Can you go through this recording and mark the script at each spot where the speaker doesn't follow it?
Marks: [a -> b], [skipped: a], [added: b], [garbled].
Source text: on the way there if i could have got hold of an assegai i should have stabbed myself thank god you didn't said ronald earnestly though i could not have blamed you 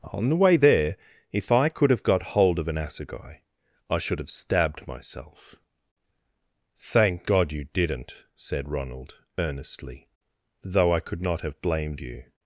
on the way there if i could have got hold of an assegai i should have stabbed myself thank god you didn't said ronald earnestly though i could not have blamed you